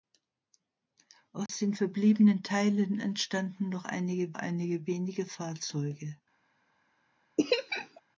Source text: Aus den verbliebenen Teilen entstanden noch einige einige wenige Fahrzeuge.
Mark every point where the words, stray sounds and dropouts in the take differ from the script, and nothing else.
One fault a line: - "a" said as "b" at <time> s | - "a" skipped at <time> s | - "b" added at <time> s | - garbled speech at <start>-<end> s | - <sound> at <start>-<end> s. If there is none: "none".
- dropout at 1.5-1.5 s
- laugh at 7.4-8.0 s